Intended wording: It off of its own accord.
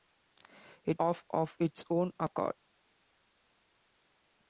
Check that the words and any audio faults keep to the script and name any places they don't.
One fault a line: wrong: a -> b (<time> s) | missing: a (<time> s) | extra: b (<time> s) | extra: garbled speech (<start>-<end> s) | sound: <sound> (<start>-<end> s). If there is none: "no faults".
no faults